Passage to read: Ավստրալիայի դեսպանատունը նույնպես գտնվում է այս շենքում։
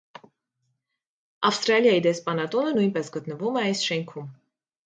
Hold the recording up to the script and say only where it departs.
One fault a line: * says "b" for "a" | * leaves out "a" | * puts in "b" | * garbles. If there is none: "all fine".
all fine